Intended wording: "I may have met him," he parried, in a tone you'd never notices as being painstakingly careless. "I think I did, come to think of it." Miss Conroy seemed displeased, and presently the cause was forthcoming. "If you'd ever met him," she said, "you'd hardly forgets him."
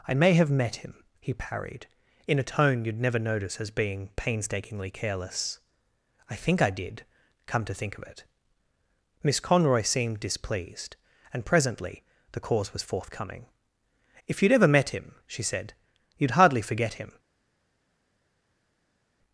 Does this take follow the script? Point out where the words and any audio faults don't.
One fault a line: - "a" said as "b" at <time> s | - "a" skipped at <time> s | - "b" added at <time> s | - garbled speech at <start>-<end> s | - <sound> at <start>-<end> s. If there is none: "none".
- "notices" said as "notice" at 3.2 s
- "forgets" said as "forget" at 16.6 s